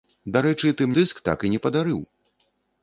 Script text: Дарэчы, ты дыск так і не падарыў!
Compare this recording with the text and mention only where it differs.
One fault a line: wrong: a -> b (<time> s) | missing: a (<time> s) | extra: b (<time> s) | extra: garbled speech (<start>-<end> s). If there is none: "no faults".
no faults